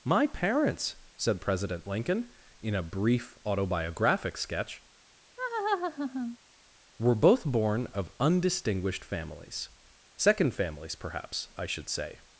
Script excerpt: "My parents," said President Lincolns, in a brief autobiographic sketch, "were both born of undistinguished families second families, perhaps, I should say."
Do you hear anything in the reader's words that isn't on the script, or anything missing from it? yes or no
yes